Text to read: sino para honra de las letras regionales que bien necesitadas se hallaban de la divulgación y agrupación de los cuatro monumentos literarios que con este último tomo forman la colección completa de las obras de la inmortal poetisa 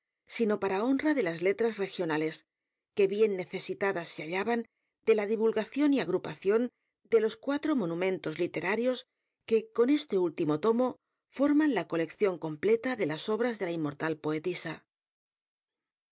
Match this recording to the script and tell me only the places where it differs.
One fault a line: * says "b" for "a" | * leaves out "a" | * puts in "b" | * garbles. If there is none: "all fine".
all fine